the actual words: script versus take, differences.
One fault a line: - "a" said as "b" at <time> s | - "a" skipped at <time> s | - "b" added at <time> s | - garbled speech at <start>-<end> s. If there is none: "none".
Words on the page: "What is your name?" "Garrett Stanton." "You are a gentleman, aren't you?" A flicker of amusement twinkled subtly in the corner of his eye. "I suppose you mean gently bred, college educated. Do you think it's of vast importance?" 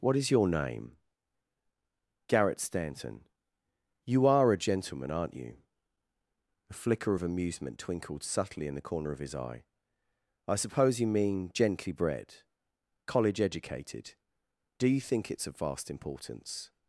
none